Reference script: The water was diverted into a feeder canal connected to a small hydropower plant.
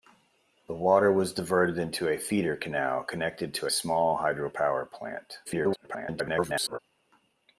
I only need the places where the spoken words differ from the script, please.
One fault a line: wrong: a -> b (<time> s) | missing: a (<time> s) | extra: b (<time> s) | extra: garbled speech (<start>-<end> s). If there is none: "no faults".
missing: a (3.7 s)
extra: garbled speech (5.4-6.8 s)